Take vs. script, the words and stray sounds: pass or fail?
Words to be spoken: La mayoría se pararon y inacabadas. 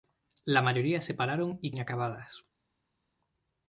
pass